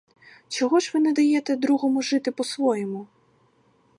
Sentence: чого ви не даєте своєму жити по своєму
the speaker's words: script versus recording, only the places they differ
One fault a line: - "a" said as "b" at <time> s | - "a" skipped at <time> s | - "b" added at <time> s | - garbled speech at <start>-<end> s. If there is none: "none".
- "ж" added at 0.8 s
- "своєму" said as "другому" at 1.6 s